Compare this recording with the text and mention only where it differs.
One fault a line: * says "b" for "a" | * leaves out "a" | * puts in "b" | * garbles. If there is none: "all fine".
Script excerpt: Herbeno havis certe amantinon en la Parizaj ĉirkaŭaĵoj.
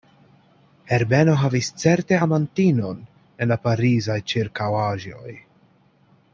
all fine